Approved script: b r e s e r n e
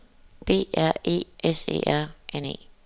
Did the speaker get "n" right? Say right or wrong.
right